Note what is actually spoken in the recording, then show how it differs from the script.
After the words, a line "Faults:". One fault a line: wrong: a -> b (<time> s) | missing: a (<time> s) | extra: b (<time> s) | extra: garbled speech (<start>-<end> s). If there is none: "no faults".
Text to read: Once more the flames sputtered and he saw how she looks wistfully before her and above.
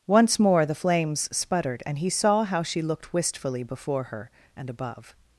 Once more the flames sputtered and he saw how she looked wistfully before her and above.
Faults:
wrong: looks -> looked (2.8 s)